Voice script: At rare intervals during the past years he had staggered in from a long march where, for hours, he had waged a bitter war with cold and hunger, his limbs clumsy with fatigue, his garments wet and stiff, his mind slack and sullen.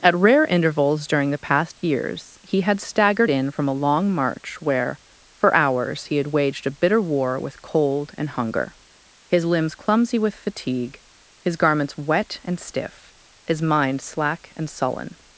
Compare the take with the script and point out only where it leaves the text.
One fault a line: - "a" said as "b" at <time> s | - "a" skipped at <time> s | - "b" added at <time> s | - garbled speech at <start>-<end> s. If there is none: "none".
none